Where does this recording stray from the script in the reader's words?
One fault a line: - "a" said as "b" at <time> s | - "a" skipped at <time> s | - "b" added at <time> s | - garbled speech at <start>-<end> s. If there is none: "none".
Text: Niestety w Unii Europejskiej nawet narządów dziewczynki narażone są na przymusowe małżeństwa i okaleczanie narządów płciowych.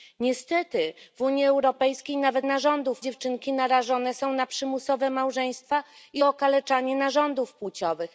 none